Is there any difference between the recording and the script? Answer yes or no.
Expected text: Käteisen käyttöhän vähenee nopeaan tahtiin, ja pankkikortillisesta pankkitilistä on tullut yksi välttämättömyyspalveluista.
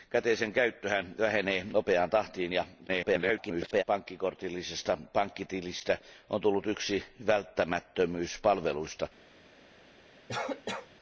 yes